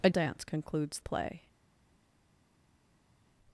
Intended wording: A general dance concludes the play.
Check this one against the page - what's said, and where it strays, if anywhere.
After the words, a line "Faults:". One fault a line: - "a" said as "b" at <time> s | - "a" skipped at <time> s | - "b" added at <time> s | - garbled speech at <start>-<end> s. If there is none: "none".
A dance concludes play.
Faults:
- "general" skipped at 0.1 s
- "the" skipped at 1.0 s